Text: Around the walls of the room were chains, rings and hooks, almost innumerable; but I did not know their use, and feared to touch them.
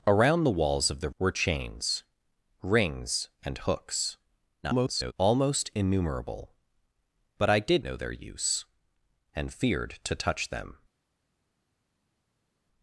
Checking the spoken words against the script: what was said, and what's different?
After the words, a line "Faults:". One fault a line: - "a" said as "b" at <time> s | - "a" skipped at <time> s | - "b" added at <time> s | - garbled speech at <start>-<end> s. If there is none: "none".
Around the walls of the were chains, rings and hooks, [garbled] almost innumerable; but I did know their use, and feared to touch them.
Faults:
- "room" skipped at 1.1 s
- garbled speech at 4.6-5.1 s
- "not" skipped at 7.8 s